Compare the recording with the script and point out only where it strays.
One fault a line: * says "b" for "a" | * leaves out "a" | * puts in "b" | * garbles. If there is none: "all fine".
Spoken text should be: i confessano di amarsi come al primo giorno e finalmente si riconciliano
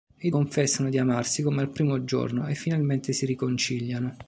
all fine